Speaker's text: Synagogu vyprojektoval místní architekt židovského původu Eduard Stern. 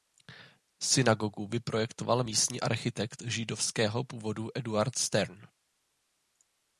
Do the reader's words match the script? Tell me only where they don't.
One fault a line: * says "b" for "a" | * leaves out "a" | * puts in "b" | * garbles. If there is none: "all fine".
all fine